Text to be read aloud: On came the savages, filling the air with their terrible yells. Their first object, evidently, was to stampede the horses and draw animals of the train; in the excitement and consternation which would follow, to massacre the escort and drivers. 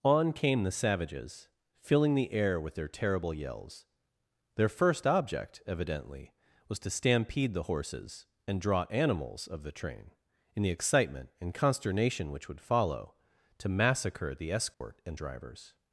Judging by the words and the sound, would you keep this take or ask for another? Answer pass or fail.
fail